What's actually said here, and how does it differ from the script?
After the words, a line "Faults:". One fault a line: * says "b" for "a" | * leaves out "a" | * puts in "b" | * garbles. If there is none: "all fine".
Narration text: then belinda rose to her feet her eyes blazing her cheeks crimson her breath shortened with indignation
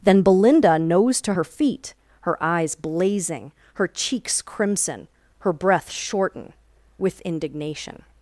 then belinda nose to her feet her eyes blazing her cheeks crimson her breath shorten with indignation
Faults:
* says "nose" for "rose"
* says "shorten" for "shortened"